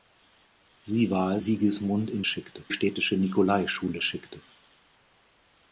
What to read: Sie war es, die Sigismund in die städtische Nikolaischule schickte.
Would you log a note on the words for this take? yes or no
yes